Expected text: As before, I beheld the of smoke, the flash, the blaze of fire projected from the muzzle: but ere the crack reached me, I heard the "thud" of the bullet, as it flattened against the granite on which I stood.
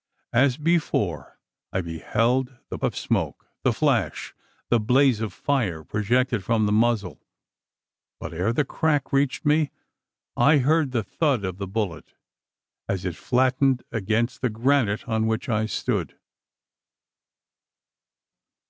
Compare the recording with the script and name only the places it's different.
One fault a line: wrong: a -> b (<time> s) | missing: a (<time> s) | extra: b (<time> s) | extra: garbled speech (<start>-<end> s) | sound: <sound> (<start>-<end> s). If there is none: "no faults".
no faults